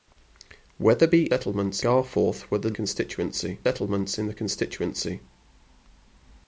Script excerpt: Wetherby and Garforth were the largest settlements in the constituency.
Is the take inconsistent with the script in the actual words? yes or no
yes